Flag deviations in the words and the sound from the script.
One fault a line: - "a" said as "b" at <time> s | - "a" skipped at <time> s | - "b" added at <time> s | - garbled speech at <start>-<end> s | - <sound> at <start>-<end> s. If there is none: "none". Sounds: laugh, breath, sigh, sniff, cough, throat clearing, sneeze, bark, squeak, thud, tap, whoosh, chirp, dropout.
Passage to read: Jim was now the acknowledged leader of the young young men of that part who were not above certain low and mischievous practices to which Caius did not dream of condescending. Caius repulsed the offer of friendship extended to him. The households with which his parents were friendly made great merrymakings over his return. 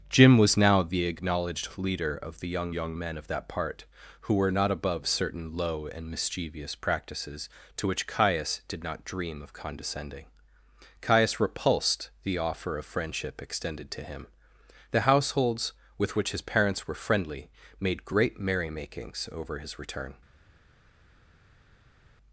none